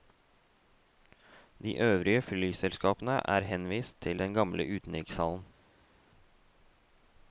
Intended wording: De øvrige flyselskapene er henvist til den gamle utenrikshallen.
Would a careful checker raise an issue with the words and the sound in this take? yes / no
no